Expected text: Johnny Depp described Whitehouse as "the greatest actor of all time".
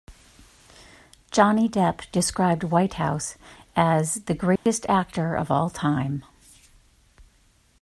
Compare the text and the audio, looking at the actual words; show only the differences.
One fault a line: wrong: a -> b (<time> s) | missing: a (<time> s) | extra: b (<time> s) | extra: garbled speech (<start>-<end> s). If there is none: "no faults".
no faults